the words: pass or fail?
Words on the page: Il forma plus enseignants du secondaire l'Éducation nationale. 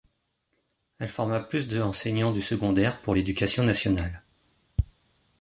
fail